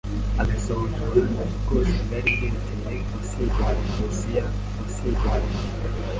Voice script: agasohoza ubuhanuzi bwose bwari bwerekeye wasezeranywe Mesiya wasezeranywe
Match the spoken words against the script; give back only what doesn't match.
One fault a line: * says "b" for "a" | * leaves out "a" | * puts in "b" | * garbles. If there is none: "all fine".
all fine